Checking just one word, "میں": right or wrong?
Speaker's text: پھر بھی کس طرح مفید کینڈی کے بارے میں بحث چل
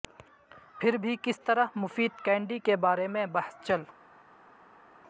right